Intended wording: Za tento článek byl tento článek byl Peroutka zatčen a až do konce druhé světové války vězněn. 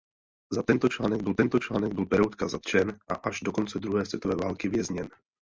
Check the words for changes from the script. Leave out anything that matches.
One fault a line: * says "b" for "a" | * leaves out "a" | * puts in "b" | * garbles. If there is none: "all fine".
all fine